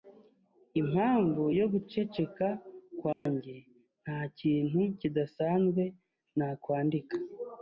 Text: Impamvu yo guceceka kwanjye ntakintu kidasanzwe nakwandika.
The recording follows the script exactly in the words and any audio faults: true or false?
false